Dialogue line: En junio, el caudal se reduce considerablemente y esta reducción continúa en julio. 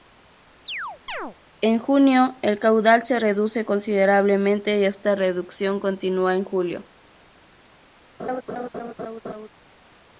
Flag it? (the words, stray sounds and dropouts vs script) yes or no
yes